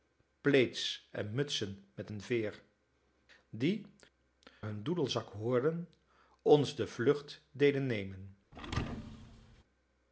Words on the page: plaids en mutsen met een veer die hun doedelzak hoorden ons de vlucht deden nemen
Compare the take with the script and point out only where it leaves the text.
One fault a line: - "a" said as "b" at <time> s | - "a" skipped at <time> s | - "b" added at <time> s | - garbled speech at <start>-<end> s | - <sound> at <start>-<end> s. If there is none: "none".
- thud at 8.5-9.6 s